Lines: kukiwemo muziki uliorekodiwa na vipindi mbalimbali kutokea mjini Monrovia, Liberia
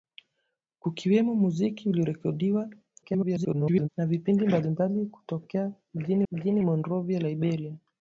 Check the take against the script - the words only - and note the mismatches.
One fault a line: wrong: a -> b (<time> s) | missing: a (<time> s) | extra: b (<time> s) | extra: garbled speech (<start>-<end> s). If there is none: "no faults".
extra: garbled speech (3.0-3.9 s)
extra: mjini (6.3 s)